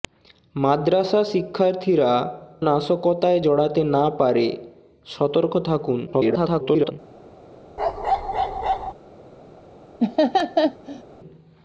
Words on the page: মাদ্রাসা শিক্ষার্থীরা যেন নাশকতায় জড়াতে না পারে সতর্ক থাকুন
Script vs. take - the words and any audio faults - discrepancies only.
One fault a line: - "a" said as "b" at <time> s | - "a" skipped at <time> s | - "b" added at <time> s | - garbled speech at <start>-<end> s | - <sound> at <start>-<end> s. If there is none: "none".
- "যেন" skipped at 2.1 s
- garbled speech at 6.1-6.9 s
- bark at 7.8-8.9 s
- laugh at 10.0-11.0 s